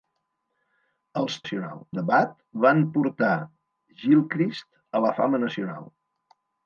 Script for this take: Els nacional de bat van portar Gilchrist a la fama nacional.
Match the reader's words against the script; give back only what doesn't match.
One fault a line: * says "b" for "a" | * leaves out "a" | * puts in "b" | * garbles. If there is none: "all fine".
all fine